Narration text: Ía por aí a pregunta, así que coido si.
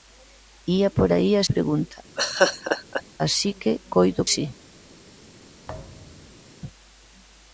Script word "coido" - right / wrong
right